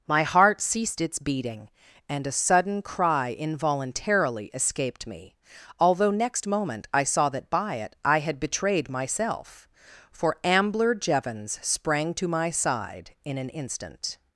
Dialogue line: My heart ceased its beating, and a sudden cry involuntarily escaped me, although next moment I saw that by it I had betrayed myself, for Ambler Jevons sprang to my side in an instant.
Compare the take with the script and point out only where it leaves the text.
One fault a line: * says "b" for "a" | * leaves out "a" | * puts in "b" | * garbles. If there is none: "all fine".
all fine